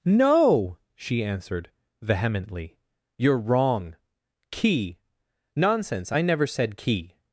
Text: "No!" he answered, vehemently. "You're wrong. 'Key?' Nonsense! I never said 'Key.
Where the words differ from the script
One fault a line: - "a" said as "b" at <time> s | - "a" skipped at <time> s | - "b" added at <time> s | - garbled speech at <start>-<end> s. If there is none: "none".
- "he" said as "she" at 0.9 s